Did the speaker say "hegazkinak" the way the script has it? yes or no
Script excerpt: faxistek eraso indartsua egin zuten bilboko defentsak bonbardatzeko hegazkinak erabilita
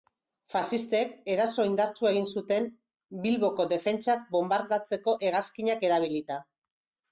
yes